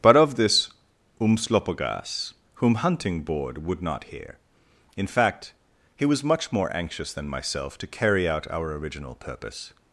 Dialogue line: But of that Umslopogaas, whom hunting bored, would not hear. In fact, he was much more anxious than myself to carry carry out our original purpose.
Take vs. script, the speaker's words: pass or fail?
fail